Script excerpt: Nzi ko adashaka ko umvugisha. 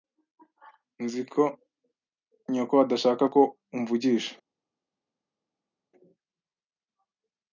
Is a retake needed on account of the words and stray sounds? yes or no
yes